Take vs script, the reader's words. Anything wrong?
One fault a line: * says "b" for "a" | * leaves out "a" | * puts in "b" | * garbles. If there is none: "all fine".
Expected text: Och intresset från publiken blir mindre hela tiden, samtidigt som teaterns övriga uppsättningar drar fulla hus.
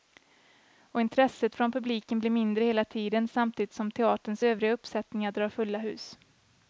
all fine